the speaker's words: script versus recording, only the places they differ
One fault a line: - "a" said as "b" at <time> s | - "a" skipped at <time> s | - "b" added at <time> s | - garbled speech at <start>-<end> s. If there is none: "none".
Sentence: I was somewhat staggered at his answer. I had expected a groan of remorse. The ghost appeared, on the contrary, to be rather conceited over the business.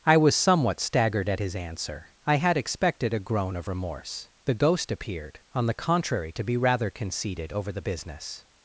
none